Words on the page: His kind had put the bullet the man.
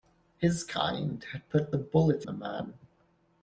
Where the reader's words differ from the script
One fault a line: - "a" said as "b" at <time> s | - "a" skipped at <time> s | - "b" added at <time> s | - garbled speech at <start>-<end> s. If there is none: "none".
none